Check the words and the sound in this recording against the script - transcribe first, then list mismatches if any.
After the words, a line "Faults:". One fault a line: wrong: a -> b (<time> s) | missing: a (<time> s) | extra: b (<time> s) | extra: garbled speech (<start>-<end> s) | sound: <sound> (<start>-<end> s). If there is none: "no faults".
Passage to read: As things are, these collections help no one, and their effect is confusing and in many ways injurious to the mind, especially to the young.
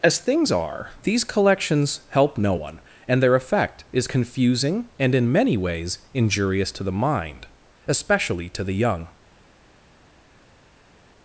As things are, these collections help no one, and their effect is confusing and in many ways injurious to the mind, especially to the young.
Faults:
no faults